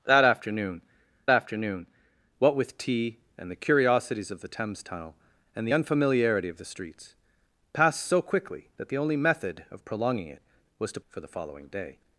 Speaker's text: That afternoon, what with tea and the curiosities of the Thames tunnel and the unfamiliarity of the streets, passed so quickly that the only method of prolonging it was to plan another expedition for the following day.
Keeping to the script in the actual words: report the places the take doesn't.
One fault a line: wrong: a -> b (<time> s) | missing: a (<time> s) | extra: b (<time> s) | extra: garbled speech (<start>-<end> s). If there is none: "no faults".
extra: afternoon (1.3 s)
missing: plan another expedition (11.0 s)